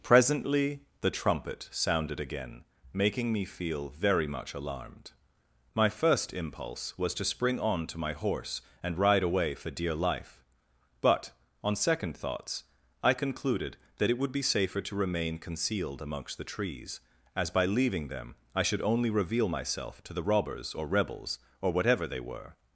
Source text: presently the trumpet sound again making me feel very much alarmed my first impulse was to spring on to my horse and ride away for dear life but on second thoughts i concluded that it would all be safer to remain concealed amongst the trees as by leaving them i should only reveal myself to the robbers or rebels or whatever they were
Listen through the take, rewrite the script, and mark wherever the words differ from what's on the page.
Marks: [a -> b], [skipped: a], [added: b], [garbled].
presently the trumpet [sound -> sounded] again making me feel very much alarmed my first impulse was to spring on to my horse and ride away for dear life but on second thoughts i concluded that it would [skipped: all] be safer to remain concealed amongst the trees as by leaving them i should only reveal myself to the robbers or rebels or whatever they were